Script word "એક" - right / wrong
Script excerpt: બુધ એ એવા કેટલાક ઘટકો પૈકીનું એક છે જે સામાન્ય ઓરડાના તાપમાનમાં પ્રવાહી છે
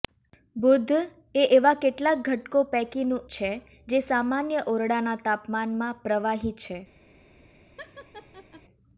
wrong